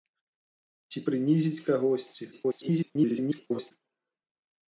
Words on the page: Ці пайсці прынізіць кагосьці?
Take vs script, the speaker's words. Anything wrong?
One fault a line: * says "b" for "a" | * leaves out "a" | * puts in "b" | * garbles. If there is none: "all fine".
* leaves out "пайсці"
* garbles